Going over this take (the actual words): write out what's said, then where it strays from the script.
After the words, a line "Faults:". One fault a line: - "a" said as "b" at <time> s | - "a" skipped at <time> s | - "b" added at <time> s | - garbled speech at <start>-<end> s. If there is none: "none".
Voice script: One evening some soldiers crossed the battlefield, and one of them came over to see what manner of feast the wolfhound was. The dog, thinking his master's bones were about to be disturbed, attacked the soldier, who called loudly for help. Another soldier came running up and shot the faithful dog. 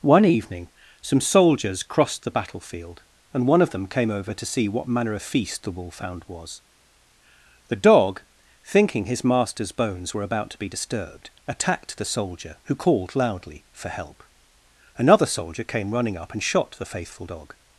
One evening some soldiers crossed the battlefield, and one of them came over to see what manner of feast the wolfhound was. The dog, thinking his master's bones were about to be disturbed, attacked the soldier, who called loudly for help. Another soldier came running up and shot the faithful dog.
Faults:
none